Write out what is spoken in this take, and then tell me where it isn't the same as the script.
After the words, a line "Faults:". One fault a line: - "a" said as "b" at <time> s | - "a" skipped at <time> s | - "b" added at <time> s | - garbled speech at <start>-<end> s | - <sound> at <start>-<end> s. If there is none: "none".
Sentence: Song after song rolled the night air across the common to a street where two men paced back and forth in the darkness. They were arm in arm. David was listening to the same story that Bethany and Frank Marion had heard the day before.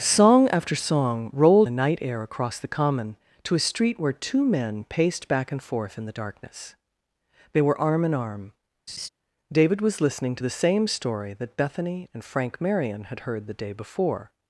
Song after song rolled the night air across the common to a street where two men paced back and forth in the darkness. They were arm in arm. David was listening to the same story that Bethany and Frank Marion had heard the day before.
Faults:
- laugh at 8.9-9.1 s